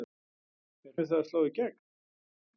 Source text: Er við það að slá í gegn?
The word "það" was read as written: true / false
true